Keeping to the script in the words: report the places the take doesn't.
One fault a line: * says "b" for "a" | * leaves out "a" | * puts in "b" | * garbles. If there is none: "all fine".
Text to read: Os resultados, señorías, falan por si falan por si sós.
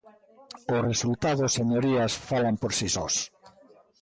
* leaves out "falan por si"